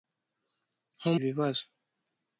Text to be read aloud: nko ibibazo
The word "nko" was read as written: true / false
true